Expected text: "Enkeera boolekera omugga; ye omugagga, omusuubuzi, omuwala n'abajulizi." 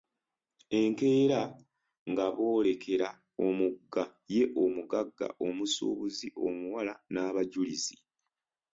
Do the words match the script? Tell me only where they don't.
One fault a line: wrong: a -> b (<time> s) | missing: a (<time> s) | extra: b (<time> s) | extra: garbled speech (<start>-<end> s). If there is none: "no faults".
extra: nga (2.1 s)